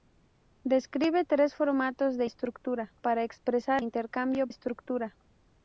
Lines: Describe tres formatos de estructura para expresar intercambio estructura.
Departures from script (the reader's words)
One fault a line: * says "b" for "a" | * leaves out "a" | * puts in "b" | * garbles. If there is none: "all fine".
all fine